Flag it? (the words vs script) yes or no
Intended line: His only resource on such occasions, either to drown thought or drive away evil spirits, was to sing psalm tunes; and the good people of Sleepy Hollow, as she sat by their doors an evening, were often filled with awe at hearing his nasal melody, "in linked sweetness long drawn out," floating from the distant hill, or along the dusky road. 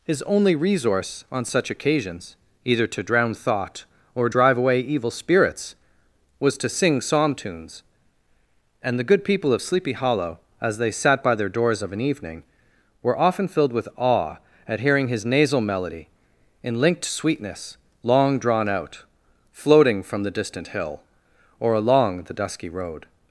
yes